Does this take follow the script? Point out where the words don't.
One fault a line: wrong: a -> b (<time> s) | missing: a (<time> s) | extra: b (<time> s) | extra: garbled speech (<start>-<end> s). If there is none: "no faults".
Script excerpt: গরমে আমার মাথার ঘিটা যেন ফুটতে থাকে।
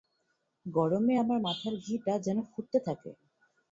no faults